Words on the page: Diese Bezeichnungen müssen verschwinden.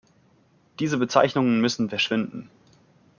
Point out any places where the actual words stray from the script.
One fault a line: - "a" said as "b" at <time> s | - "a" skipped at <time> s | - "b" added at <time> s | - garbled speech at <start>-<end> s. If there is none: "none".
none